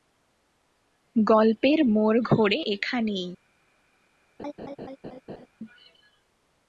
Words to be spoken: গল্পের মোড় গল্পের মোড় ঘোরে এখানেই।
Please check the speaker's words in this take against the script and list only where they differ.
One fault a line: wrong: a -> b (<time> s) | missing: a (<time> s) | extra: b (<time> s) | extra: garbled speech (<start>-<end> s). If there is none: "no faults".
missing: গল্পের মোড় (2.2 s)